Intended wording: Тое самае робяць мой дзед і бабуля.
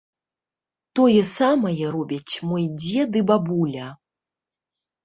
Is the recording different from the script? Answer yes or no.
no